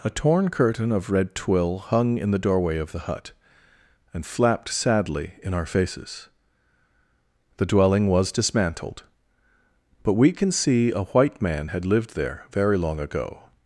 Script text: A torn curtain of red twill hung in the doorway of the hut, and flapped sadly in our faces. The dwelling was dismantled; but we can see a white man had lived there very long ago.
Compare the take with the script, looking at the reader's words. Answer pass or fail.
pass